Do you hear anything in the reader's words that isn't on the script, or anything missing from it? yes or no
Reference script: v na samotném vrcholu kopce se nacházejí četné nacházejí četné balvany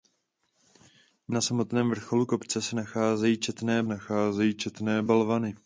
no